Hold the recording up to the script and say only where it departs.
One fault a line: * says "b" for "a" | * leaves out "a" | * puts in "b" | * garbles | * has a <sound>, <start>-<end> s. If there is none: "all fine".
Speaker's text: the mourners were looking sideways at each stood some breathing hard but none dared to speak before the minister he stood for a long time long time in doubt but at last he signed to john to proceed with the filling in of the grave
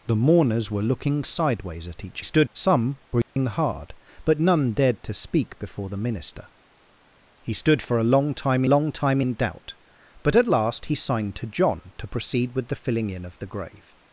* has a dropout, 3.2-3.4 s